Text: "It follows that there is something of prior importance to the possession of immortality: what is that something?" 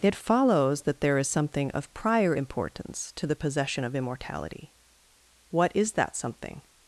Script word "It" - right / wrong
right